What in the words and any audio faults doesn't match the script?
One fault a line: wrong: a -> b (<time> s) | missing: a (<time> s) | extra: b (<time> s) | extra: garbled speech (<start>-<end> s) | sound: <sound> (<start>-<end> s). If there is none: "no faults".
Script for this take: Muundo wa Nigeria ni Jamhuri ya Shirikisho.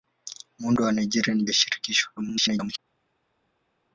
missing: Jamhuri (1.4 s)
extra: garbled speech (2.2-2.8 s)